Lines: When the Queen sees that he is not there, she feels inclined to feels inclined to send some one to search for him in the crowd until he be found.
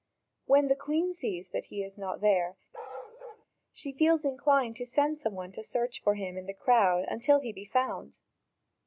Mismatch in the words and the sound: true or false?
true